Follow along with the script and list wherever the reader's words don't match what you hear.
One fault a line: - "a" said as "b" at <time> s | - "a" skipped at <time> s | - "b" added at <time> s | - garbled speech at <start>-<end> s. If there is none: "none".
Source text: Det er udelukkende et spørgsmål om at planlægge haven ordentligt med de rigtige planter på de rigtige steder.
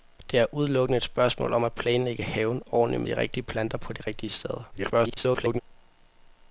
- "med" skipped at 3.0 s
- garbled speech at 4.7-5.6 s